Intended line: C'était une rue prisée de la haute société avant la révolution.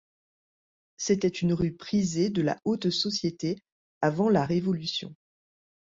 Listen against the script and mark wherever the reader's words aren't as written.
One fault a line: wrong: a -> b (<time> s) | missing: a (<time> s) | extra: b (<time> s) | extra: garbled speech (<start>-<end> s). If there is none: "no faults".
no faults